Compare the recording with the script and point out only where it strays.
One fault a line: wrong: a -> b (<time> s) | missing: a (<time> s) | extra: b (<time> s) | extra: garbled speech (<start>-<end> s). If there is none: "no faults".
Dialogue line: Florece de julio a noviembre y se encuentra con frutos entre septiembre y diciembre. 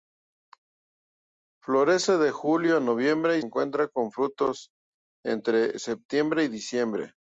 missing: se (3.4 s)